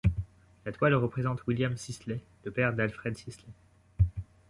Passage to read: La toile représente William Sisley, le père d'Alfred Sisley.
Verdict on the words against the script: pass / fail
pass